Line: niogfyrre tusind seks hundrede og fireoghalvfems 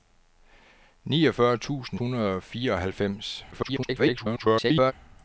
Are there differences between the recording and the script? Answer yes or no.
yes